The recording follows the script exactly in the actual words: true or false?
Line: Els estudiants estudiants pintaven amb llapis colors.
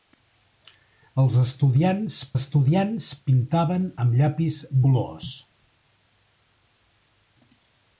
true